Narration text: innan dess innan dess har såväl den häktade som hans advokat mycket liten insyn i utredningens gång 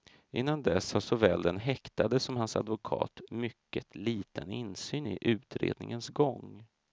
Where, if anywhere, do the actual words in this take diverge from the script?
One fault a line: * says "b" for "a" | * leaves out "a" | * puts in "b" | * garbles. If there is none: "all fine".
* leaves out "innan dess"